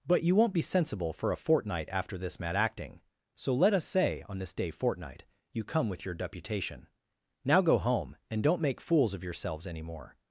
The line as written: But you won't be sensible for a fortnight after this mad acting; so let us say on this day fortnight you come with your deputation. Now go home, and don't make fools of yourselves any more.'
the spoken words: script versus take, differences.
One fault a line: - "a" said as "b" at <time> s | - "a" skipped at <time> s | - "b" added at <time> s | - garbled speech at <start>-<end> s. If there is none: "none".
none